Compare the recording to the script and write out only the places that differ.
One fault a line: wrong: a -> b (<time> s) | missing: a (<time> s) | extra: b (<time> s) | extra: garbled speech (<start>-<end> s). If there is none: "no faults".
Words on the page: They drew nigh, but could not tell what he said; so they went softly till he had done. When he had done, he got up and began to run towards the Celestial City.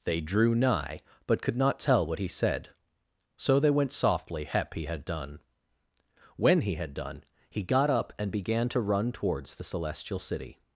wrong: till -> hep (4.5 s)